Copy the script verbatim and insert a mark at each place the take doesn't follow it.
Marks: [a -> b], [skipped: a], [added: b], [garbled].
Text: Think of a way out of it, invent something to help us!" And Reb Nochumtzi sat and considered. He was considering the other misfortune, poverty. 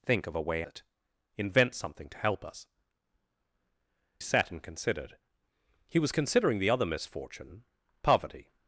Think of a way [skipped: out of] it, invent something to help us!" [skipped: And Reb Nochumtzi] sat and considered. He was considering the other misfortune, poverty.